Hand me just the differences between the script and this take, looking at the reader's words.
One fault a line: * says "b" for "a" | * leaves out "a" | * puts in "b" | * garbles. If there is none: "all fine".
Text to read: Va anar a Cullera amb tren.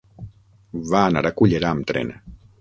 all fine